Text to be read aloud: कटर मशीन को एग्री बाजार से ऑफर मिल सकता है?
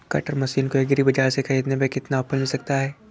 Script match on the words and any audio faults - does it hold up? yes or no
no